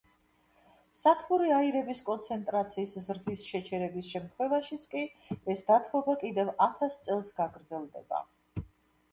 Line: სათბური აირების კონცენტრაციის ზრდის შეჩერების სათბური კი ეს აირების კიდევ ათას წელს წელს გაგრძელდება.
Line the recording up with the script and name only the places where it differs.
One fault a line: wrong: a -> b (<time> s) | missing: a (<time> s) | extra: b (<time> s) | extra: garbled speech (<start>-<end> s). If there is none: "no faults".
wrong: სათბური -> შემთხვევაშიც (4.1 s)
wrong: აირების -> დათბობა (5.7 s)
missing: წელს (7.3 s)